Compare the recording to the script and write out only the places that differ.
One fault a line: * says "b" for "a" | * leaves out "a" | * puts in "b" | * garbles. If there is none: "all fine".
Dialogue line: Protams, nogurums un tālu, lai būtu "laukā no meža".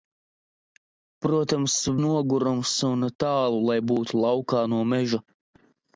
all fine